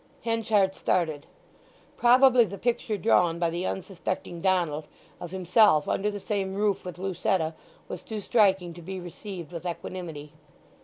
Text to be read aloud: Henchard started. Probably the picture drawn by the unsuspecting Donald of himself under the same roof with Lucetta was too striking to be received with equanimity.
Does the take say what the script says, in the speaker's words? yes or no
yes